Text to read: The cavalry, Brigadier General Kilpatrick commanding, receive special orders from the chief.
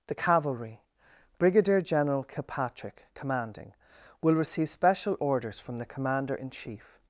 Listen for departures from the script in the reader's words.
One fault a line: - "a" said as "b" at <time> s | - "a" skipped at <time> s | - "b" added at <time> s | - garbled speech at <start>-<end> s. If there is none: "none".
- "will" added at 4.2 s
- "commander in" added at 5.9 s